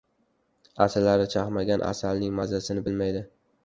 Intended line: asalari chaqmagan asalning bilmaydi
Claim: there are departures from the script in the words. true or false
true